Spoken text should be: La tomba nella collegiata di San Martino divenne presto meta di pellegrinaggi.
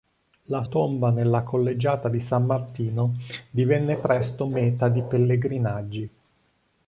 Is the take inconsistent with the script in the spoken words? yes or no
no